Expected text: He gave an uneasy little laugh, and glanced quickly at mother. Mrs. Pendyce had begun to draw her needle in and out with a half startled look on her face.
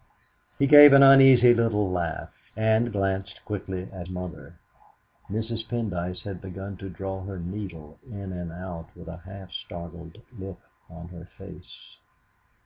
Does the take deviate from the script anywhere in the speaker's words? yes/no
no